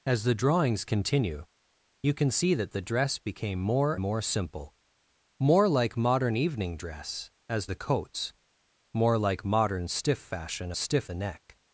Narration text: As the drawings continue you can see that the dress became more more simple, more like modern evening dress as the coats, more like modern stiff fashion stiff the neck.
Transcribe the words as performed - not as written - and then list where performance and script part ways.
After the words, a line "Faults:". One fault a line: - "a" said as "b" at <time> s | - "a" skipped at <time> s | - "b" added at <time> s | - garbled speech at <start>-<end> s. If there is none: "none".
As the drawings continue you can see that the dress became more more simple, more like modern evening dress as the coats, more like modern stiff fashion stiff the neck.
Faults:
none